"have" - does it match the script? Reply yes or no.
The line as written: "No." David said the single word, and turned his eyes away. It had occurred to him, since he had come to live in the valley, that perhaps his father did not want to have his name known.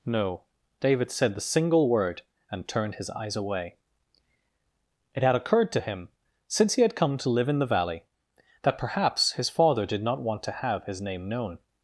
yes